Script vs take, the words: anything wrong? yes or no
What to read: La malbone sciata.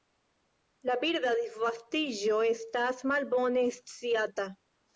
yes